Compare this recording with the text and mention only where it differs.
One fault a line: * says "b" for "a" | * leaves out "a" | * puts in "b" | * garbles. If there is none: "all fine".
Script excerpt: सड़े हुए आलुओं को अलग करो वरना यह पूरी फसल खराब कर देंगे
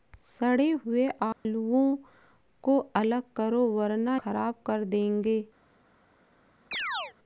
* leaves out "यह पूरी फसल"